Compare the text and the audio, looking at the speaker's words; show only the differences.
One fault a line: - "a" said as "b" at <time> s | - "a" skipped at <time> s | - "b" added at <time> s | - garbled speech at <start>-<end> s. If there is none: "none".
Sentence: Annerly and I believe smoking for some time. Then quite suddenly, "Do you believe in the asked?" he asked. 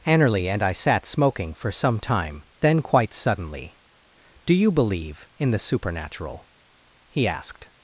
- "believe" said as "sat" at 0.7 s
- "asked" said as "supernatural" at 5.6 s